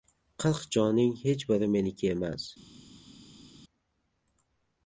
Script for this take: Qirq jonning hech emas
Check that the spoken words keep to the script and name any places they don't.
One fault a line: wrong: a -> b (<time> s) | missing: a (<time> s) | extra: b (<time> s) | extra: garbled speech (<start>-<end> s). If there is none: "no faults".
extra: biri meniki (1.5 s)